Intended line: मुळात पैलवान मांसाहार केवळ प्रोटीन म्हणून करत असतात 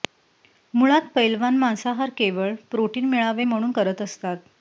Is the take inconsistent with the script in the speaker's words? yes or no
yes